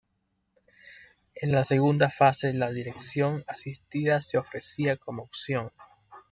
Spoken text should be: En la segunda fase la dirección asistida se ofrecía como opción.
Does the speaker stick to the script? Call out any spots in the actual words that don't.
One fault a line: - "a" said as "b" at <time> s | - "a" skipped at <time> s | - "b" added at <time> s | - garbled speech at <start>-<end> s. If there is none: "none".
none